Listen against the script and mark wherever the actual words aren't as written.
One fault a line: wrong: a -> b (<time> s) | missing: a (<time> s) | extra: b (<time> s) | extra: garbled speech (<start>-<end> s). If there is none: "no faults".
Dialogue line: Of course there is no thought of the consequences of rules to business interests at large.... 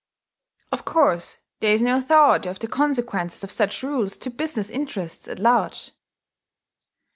extra: such (3.5 s)